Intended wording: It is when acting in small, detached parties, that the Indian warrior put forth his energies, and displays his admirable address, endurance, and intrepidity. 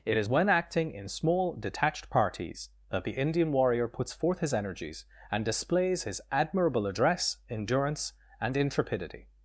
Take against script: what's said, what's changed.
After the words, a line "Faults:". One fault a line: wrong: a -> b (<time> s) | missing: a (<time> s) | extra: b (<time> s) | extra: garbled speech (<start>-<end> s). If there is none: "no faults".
It is when acting in small, detached parties, that the Indian warrior puts forth his energies, and displays his admirable address, endurance, and intrepidity.
Faults:
wrong: put -> puts (3.9 s)